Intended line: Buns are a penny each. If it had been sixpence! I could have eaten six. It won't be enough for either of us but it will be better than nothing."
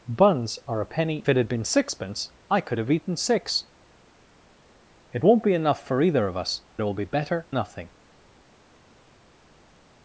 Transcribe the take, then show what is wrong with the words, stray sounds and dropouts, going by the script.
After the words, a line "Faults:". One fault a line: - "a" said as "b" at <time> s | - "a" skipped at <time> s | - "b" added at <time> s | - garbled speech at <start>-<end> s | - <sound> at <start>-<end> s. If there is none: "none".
Buns are a penny it had been sixpence! I could have eaten six. It won't be enough for either of us it will be better nothing."
Faults:
- "each If" skipped at 1.2 s
- "but" skipped at 6.6 s
- "than" skipped at 7.5 s